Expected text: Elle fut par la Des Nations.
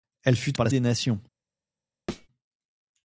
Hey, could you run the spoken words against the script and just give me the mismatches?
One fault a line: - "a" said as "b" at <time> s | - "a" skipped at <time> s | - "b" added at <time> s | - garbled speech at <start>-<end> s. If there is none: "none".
none